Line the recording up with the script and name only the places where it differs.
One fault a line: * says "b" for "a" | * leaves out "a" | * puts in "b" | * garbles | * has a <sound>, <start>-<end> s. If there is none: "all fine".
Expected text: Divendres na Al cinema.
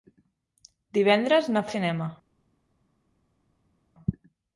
all fine